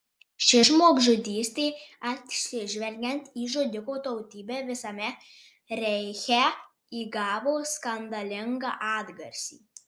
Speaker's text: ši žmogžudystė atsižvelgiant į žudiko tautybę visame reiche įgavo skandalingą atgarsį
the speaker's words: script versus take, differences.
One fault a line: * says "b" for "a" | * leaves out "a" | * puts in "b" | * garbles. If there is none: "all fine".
all fine